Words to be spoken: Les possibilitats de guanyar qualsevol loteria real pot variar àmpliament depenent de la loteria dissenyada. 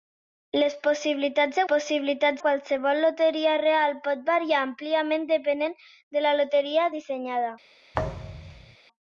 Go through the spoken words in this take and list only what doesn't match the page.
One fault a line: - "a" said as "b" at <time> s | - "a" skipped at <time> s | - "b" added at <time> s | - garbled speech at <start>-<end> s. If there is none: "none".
- "guanyar" said as "possibilitats" at 1.7 s